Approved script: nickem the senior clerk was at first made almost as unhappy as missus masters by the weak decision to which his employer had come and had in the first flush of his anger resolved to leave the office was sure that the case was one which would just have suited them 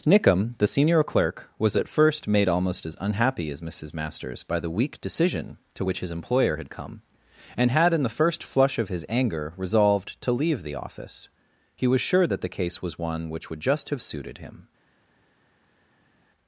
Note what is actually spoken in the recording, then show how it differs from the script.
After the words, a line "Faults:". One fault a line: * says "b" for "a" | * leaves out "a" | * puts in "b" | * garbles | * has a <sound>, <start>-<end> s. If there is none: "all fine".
nickem the senior clerk was at first made almost as unhappy as missus masters by the weak decision to which his employer had come and had in the first flush of his anger resolved to leave the office he was sure that the case was one which would just have suited him
Faults:
* puts in "he"
* says "him" for "them"